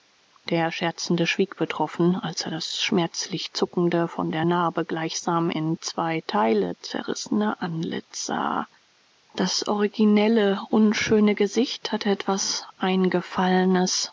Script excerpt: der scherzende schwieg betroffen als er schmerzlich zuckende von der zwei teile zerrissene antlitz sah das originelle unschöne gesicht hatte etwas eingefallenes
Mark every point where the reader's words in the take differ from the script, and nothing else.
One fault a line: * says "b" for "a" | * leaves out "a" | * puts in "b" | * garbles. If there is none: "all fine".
* puts in "das"
* puts in "narbe gleichsam in"